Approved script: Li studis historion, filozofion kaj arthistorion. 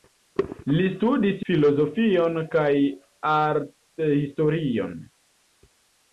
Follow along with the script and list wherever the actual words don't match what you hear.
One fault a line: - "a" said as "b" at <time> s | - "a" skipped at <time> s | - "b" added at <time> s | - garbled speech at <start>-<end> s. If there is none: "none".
- "historion" skipped at 1.4 s